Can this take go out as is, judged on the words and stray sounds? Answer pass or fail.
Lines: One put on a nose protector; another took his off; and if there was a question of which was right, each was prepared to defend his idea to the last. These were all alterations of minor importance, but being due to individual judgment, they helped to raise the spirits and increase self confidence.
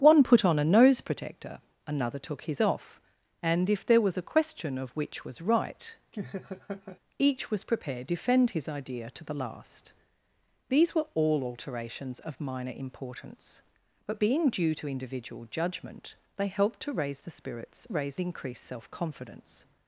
fail